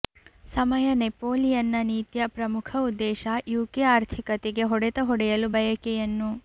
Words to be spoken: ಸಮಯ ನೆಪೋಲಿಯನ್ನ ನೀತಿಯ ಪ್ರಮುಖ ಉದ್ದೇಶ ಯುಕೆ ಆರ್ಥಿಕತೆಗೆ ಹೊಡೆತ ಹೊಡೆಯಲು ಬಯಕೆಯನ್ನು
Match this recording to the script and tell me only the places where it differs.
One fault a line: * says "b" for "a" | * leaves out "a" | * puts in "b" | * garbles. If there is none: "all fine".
all fine